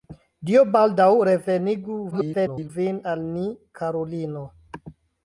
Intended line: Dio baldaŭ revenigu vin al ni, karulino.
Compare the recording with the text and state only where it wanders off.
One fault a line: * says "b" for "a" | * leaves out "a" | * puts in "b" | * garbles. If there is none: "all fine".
* garbles